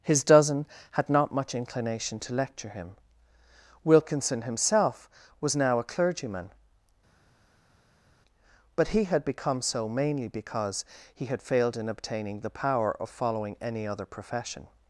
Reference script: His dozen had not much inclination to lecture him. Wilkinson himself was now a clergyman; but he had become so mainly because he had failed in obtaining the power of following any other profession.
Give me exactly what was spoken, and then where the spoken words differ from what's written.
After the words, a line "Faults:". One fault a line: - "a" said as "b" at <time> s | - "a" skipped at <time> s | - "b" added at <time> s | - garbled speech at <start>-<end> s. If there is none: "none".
His dozen had not much inclination to lecture him. Wilkinson himself was now a clergyman; but he had become so mainly because he had failed in obtaining the power of following any other profession.
Faults:
none